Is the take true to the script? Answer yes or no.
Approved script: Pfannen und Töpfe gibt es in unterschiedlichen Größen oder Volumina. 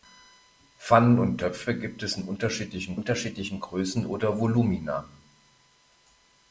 no